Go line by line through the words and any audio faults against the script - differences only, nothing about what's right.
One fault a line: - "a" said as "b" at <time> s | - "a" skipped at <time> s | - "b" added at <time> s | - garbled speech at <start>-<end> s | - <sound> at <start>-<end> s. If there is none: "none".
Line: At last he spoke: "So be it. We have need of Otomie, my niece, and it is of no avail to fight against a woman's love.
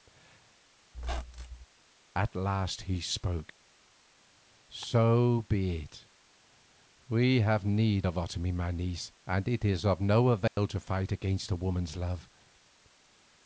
- squeak at 0.9-1.7 s
- dropout at 10.5-10.6 s